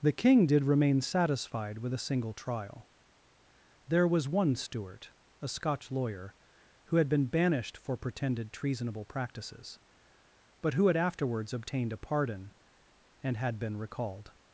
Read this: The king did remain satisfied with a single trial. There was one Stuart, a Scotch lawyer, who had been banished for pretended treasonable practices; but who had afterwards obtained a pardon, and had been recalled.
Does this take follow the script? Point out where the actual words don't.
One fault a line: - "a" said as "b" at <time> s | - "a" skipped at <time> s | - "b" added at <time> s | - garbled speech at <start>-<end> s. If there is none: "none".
none